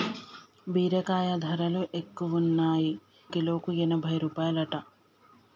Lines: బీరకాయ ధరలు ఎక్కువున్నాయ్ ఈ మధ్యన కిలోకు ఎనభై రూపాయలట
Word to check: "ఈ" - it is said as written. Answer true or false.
false